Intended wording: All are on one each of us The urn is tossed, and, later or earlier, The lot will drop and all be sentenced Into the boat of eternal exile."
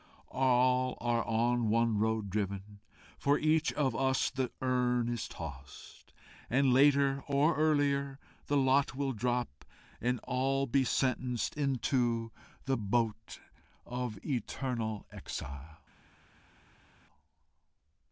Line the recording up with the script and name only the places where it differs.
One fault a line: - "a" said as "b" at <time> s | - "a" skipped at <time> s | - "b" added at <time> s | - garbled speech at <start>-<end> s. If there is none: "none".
- "road driven for" added at 2.0 s